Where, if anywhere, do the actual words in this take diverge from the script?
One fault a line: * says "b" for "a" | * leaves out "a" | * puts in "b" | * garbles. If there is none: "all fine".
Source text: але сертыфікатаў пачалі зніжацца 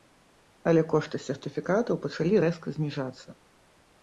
* puts in "кошты"
* puts in "рэзка"